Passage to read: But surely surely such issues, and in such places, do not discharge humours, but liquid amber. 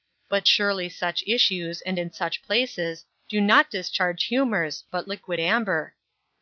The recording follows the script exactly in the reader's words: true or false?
false